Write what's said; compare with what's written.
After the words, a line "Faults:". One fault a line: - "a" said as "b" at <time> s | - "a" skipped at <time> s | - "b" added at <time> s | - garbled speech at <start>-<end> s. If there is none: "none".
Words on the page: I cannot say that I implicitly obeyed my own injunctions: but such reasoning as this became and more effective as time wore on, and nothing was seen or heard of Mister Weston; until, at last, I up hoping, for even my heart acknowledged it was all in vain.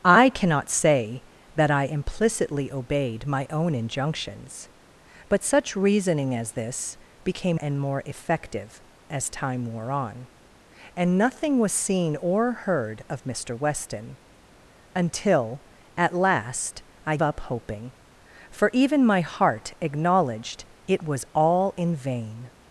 I cannot say that I implicitly obeyed my own injunctions: but such reasoning as this became and more effective as time wore on, and nothing was seen or heard of Mister Weston; until, at last, I up hoping, for even my heart acknowledged it was all in vain.
Faults:
none